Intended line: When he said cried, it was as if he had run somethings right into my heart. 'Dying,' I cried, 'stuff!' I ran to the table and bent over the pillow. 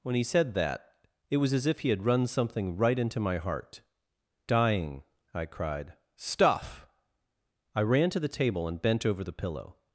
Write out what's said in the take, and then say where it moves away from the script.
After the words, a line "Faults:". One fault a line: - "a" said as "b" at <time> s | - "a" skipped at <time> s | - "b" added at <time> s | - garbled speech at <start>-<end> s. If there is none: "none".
When he said that, it was as if he had run something right into my heart. 'Dying,' I cried, 'stuff!' I ran to the table and bent over the pillow.
Faults:
- "cried" said as "that" at 0.5 s
- "somethings" said as "something" at 2.3 s